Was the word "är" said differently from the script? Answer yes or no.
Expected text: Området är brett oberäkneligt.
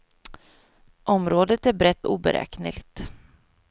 no